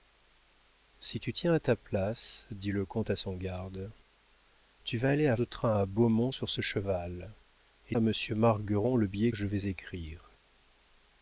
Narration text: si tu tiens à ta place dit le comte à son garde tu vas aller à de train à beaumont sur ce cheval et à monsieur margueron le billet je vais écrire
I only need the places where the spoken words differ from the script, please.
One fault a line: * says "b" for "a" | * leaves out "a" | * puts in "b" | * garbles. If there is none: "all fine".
all fine